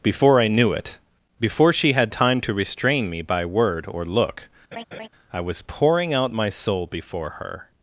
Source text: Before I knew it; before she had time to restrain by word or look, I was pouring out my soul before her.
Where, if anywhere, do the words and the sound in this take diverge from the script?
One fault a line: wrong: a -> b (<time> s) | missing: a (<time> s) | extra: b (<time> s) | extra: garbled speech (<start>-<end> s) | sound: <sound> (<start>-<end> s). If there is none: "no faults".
extra: me (3.1 s)
sound: laugh (4.7-5.1 s)